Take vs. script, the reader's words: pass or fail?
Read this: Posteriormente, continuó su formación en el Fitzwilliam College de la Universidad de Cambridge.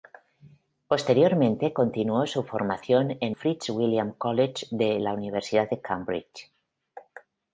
fail